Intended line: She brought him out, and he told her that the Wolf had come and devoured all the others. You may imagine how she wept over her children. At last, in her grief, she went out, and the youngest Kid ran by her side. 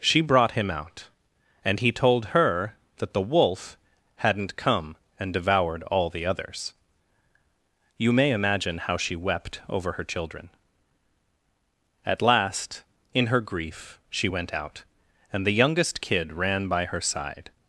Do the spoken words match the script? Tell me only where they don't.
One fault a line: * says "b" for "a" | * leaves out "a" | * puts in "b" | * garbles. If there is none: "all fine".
* says "hadn't" for "had"